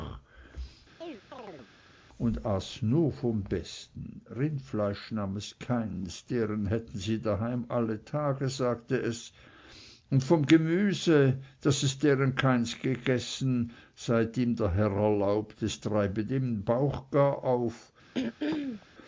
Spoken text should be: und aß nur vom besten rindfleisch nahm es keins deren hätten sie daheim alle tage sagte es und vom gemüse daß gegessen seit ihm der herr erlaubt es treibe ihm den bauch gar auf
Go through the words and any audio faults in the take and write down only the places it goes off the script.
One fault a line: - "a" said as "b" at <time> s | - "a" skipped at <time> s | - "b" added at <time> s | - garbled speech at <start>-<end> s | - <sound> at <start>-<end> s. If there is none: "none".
- chirp at 1.0-1.7 s
- "es deren keins" added at 11.8 s
- throat clearing at 18.1-18.9 s